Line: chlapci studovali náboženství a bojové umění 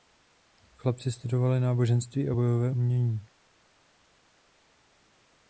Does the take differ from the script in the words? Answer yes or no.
no